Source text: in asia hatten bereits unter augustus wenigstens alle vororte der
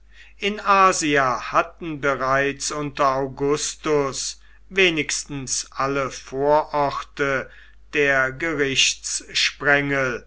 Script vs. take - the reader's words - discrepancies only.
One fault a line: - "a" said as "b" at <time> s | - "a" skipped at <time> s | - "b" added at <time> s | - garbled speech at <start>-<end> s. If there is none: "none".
none